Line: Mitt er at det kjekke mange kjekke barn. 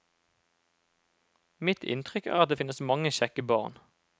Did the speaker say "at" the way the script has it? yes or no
yes